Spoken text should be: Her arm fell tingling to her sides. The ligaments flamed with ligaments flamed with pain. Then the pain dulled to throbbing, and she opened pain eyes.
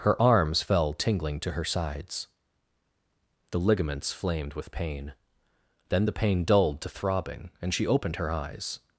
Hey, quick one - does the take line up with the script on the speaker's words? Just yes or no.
no